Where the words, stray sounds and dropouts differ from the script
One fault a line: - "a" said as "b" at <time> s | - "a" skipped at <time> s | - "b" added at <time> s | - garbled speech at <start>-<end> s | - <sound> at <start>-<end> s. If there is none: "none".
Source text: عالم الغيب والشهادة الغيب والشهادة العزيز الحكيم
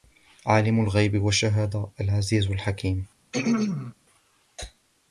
- "الغيب والشهادة" skipped at 1.9 s
- throat clearing at 3.3-3.9 s